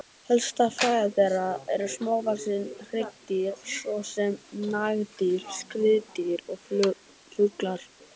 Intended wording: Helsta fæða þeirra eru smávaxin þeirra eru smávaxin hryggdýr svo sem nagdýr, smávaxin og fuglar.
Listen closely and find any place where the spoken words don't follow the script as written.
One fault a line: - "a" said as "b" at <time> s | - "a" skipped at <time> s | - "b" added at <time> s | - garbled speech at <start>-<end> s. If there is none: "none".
- "þeirra eru smávaxin" skipped at 2.6 s
- "smávaxin" said as "skriðdýr" at 5.6 s